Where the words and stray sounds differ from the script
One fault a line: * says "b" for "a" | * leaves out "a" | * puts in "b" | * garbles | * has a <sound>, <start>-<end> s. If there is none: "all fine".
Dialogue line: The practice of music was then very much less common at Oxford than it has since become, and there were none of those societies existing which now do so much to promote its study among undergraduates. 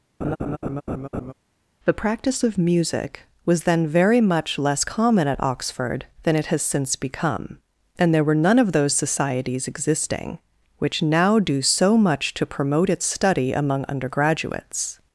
* has a laugh, 0.2-1.3 s